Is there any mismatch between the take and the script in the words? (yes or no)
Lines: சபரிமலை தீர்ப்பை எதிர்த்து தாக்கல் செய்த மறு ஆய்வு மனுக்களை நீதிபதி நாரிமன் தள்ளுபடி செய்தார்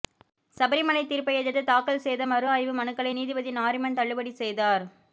no